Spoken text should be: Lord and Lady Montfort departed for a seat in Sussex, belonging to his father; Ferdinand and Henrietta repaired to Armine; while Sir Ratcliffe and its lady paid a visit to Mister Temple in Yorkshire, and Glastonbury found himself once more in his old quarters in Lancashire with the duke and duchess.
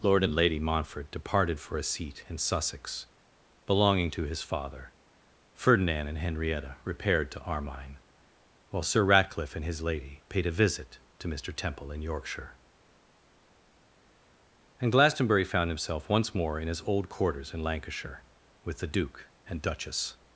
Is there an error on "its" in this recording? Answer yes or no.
yes